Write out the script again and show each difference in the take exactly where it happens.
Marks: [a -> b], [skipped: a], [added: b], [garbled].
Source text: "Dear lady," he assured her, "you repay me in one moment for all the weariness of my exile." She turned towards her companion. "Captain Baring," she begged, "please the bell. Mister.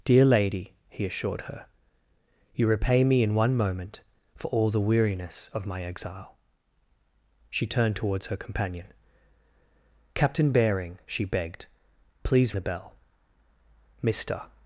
"Dear lady," he assured her, "you repay me in one moment for all the weariness of my exile." She turned towards her companion. "Captain Baring," she begged, "please the bell. Mister.